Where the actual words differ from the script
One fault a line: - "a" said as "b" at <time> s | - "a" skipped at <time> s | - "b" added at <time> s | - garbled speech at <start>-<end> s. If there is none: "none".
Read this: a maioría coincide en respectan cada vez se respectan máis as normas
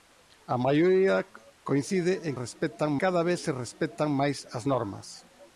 none